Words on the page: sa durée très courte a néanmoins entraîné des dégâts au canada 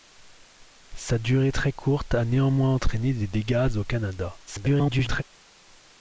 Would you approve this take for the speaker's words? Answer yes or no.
no